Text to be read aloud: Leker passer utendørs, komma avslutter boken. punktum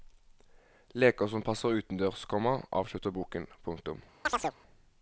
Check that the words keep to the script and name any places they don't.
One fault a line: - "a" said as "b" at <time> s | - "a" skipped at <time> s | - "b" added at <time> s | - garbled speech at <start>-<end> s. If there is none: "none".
- "som" added at 1.3 s